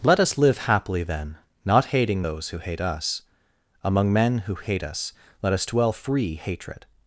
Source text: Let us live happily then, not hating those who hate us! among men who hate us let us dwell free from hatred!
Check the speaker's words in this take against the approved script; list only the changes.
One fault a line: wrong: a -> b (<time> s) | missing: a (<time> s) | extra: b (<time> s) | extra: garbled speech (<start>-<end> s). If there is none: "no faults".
missing: from (6.4 s)